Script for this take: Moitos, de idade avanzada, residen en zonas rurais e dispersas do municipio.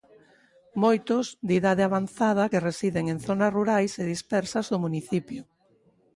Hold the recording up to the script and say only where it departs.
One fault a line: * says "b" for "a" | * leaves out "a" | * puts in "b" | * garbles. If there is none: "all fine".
* puts in "que"